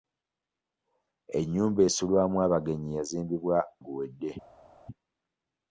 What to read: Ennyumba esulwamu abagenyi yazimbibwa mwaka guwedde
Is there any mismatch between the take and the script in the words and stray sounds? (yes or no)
yes